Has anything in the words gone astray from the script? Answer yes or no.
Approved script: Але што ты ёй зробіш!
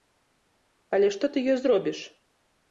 no